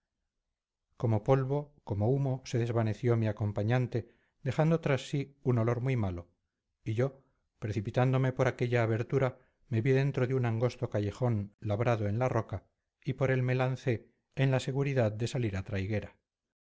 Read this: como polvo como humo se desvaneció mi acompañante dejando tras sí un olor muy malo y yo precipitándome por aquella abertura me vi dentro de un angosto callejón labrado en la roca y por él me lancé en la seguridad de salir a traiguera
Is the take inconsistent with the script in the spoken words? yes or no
no